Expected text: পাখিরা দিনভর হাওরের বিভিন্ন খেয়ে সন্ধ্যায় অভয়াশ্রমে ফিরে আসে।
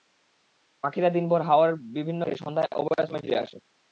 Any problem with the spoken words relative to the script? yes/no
no